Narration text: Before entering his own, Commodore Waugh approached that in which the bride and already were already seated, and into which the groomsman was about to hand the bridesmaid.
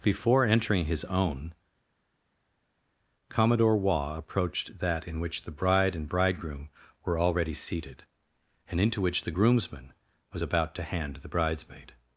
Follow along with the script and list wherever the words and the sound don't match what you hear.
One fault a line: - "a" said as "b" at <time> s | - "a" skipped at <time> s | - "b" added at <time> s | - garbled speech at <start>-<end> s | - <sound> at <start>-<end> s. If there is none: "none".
- "already" said as "bridegroom" at 6.1 s